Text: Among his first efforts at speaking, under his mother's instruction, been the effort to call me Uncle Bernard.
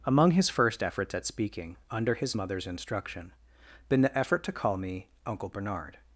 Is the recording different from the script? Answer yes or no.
no